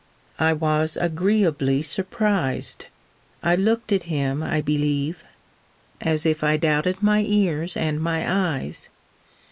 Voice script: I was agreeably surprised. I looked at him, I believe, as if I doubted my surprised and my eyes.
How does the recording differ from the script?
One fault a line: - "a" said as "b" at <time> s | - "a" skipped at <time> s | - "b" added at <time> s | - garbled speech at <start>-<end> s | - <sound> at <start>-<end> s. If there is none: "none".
- "surprised" said as "ears" at 7.2 s